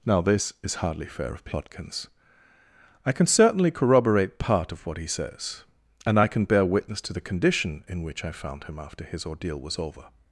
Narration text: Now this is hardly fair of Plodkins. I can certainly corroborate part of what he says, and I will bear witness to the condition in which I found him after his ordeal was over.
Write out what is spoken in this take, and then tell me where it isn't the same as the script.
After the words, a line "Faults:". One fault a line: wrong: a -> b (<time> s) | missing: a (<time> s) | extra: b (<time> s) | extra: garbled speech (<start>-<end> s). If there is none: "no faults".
Now this is hardly fair of Plodkins. I can certainly corroborate part of what he says, and I can bear witness to the condition in which I found him after his ordeal was over.
Faults:
wrong: will -> can (6.3 s)